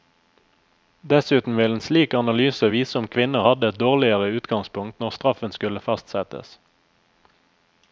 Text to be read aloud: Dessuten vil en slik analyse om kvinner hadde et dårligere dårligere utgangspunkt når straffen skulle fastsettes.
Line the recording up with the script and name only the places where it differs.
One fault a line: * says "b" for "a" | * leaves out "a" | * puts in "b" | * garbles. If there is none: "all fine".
* puts in "vise"
* leaves out "dårligere"